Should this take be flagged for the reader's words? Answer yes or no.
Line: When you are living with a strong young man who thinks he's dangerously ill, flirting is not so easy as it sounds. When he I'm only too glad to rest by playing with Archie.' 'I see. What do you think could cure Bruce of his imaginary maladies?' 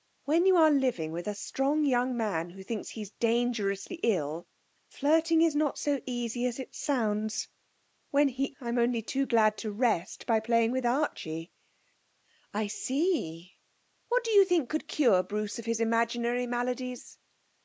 no